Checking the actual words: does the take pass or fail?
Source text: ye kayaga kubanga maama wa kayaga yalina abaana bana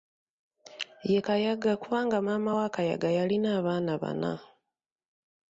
pass